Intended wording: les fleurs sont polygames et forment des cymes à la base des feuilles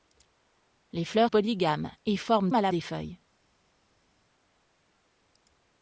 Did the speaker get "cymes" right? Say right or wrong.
wrong